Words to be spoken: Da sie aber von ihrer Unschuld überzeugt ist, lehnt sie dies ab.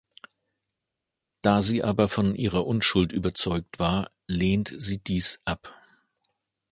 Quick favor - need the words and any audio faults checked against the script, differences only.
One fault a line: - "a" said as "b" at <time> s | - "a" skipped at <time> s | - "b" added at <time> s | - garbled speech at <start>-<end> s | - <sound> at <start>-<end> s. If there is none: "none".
- "ist" said as "war" at 3.8 s